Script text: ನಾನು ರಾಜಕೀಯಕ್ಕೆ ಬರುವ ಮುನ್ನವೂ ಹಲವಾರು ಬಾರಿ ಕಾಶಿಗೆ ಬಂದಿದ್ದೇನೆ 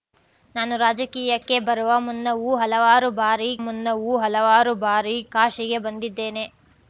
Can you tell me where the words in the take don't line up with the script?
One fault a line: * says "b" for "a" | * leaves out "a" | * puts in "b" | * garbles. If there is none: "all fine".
* puts in "ಮುನ್ನವೂ ಹಲವಾರು ಬಾರಿ"